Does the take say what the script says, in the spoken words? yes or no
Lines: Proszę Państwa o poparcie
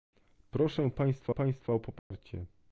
no